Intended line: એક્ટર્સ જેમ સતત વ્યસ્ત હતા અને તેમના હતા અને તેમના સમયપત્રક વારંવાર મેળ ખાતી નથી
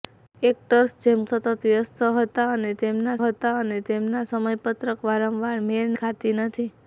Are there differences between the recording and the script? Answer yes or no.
no